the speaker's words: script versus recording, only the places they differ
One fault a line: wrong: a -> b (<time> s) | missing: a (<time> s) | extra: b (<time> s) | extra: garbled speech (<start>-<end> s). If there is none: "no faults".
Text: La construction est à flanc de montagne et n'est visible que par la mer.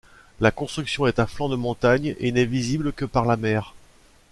no faults